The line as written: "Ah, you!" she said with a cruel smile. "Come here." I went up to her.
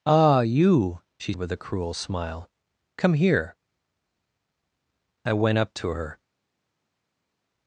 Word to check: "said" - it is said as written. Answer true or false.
false